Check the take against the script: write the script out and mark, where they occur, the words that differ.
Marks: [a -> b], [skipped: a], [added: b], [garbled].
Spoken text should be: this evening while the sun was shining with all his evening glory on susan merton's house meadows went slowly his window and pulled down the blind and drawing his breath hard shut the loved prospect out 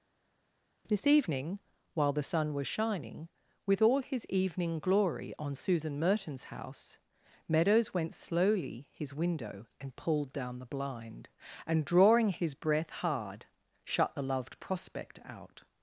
this evening while the sun was shining with all his evening glory on susan merton's house meadows went slowly his window and pulled down the blind and drawing his breath hard shut the loved prospect out